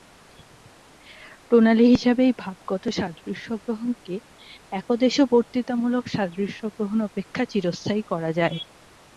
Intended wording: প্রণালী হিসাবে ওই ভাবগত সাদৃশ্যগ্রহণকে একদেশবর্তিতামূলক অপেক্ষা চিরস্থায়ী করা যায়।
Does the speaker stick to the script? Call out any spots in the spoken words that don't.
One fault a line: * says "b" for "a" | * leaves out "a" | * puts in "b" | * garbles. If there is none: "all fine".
* says "এই" for "ওই"
* puts in "সাদৃশ্যগ্রহণ"